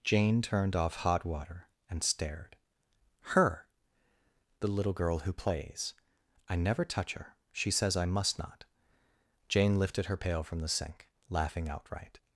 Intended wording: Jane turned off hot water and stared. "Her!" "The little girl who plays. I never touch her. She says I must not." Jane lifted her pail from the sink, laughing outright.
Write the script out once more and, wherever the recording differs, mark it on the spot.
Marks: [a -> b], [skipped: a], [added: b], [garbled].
Jane turned off hot water and stared. "Her!" "The little girl who plays. I never touch her. She says I must not." Jane lifted her pail from the sink, laughing outright.